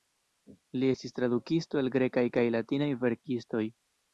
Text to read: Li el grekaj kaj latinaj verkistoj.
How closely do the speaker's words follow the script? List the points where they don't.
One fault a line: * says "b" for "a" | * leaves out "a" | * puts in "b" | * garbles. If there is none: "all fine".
* puts in "estis tradukisto"